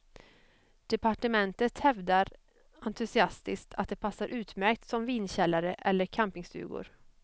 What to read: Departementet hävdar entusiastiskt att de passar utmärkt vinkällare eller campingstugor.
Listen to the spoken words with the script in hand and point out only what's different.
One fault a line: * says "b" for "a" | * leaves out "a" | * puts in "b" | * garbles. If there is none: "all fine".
* puts in "som"